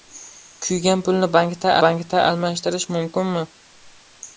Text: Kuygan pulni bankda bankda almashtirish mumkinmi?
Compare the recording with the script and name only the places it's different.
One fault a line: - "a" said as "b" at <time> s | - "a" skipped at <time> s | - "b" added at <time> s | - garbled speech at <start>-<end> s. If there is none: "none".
none